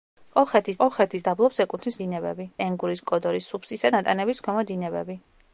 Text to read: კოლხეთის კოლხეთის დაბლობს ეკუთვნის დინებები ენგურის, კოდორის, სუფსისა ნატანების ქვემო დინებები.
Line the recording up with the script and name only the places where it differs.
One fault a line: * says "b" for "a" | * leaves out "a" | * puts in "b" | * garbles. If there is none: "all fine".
all fine